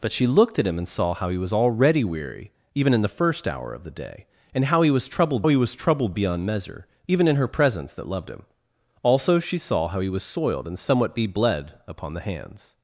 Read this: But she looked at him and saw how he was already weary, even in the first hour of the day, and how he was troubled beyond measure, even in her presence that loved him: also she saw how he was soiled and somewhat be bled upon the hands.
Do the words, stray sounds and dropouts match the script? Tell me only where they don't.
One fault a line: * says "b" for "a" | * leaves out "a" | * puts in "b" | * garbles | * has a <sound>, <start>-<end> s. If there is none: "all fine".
* puts in "he was troubled"